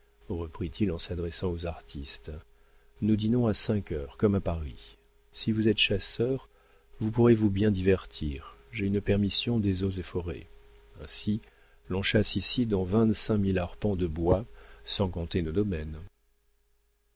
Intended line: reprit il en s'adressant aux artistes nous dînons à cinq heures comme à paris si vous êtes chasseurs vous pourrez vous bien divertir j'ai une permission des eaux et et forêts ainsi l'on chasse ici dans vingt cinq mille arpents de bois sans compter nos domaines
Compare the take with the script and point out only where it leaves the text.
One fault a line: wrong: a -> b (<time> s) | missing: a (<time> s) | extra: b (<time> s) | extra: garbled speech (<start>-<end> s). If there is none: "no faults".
missing: et (10.0 s)